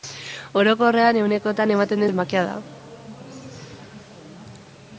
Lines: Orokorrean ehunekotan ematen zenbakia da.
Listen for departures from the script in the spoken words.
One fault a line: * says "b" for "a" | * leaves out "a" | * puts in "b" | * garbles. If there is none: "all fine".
all fine